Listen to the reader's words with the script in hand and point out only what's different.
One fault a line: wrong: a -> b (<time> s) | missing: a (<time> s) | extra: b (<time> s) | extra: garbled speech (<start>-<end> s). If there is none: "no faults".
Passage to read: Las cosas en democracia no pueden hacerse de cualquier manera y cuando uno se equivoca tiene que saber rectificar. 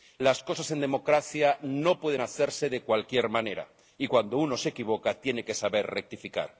no faults